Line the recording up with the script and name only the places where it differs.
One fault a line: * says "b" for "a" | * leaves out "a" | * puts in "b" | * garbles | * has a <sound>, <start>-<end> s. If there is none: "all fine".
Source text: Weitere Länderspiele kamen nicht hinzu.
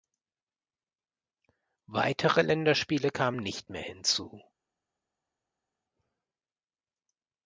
* puts in "mehr"